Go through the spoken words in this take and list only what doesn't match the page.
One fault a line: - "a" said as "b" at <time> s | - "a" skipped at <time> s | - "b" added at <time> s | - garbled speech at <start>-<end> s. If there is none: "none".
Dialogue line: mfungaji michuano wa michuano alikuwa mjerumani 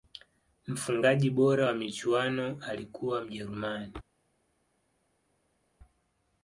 - "michuano" said as "bora" at 1.3 s